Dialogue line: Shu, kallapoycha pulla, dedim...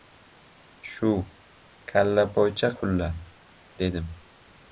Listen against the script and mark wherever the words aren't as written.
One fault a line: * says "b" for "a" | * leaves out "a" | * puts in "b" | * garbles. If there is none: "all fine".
all fine